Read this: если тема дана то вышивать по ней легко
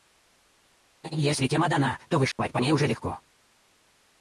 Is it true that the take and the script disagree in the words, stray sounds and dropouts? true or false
true